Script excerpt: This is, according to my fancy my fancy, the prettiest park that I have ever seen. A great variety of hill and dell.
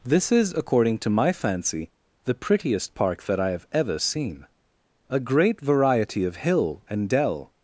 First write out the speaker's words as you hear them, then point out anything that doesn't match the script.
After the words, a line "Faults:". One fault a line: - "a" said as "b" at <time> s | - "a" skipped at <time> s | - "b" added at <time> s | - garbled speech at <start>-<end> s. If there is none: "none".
This is, according to my fancy, the prettiest park that I have ever seen. A great variety of hill and dell.
Faults:
- "my fancy" skipped at 1.9 s